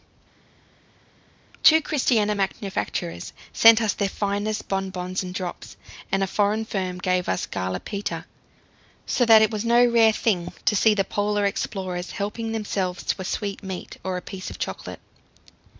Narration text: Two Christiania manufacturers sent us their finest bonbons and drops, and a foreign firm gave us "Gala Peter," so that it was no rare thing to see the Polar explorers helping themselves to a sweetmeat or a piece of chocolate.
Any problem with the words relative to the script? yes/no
no